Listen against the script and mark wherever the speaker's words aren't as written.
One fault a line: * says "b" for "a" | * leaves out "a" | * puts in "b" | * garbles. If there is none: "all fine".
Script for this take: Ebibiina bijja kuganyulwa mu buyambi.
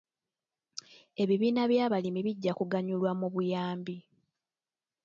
* puts in "by'abalimi"